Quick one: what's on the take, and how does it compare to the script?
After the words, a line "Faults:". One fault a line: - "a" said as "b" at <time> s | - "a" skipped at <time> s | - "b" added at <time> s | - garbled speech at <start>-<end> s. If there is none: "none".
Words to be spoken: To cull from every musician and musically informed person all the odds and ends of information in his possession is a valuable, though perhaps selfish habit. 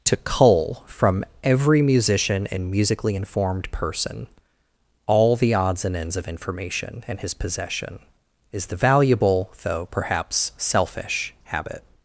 To cull from every musician and musically informed person all the odds and ends of information in his possession is the valuable, though perhaps selfish habit.
Faults:
- "a" said as "the" at 8.7 s